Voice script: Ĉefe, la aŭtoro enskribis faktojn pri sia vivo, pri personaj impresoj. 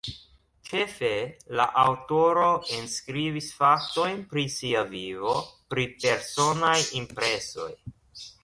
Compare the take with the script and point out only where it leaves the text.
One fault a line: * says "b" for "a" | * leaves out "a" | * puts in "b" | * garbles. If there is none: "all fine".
all fine